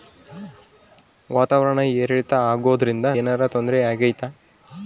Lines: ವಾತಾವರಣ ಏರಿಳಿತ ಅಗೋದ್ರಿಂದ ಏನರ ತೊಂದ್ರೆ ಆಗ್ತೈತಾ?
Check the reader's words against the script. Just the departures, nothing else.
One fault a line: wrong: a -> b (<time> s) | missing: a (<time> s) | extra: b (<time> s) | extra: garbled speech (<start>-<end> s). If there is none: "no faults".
no faults